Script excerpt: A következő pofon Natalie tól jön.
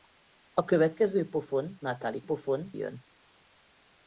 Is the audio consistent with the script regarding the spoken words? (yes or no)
no